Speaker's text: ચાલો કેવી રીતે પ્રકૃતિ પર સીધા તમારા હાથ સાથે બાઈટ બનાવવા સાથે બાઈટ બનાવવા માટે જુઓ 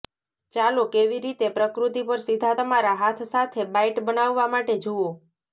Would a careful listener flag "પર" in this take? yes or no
no